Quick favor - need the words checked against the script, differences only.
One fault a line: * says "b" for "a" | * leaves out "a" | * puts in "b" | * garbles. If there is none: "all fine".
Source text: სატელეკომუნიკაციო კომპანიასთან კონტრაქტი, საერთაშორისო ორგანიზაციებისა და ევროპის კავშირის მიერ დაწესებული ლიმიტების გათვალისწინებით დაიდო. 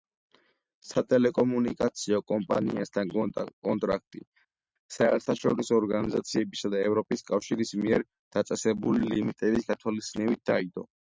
all fine